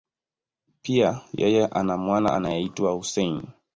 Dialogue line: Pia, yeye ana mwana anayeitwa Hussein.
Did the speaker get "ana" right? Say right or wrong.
right